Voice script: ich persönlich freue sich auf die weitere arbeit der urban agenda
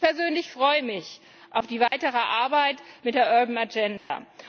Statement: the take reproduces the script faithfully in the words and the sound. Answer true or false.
false